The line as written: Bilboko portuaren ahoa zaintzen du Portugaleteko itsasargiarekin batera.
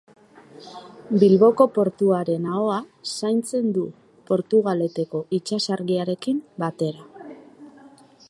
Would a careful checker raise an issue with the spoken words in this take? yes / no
no